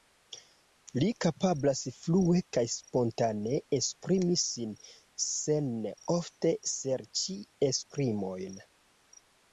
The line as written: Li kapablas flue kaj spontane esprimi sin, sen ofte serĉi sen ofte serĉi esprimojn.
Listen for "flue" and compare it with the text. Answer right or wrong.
right